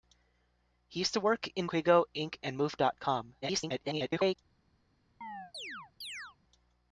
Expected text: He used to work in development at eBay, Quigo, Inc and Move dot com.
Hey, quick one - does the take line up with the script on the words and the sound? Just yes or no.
no